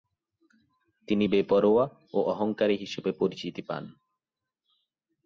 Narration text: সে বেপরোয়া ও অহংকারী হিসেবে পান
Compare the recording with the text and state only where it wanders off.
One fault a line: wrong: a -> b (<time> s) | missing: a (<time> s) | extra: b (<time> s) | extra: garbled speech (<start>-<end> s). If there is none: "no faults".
wrong: সে -> তিনি (1.1 s)
extra: পরিচিতি (3.2 s)